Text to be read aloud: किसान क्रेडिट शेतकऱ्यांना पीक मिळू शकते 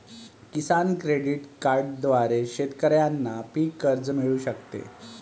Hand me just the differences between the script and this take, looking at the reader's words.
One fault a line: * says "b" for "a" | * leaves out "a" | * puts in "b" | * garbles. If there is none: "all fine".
* puts in "कार्डद्वारे"
* puts in "कर्ज"